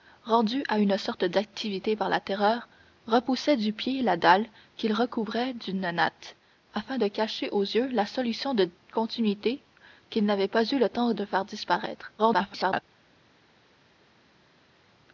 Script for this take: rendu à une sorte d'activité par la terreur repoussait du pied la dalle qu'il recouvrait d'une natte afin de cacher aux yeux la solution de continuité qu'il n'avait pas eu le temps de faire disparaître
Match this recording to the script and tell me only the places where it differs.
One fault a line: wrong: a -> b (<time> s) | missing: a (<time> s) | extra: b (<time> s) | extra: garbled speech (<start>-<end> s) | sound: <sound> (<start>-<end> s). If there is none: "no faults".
extra: garbled speech (12.2-12.8 s)